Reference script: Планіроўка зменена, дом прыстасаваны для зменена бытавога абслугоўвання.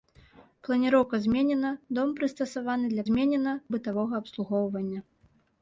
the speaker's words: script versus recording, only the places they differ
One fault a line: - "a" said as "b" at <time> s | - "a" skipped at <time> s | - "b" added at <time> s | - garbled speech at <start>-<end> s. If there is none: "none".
none